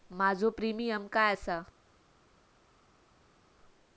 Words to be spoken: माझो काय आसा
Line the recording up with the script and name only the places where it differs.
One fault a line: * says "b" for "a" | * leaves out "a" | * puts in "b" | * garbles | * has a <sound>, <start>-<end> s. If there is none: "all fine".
* puts in "प्रीमियम"